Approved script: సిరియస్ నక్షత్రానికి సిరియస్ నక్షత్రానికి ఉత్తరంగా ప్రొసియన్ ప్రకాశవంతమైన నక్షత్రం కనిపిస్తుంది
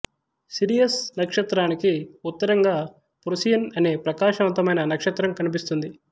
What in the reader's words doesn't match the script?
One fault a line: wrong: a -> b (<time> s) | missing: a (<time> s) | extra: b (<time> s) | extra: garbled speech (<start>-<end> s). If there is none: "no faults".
missing: సిరియస్ నక్షత్రానికి (1.9 s)
extra: అనే (3.8 s)